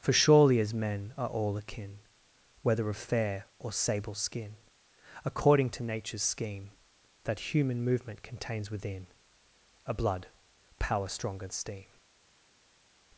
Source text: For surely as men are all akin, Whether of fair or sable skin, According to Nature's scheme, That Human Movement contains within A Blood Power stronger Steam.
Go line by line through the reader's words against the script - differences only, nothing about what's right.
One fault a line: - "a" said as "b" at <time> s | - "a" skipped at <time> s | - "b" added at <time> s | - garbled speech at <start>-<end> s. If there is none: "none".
none